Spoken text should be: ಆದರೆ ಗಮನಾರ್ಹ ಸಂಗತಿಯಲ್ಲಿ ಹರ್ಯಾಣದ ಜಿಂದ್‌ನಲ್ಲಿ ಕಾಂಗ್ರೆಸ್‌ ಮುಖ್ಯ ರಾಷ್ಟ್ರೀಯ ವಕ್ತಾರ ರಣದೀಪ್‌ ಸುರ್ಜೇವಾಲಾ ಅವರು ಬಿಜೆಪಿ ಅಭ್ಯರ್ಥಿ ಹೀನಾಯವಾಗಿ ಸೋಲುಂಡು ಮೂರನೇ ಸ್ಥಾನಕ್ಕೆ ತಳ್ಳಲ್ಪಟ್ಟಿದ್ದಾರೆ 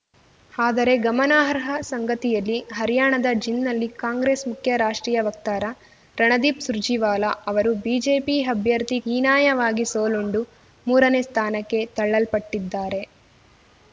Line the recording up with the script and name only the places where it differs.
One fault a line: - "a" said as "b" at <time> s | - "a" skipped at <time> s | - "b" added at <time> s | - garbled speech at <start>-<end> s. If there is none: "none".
none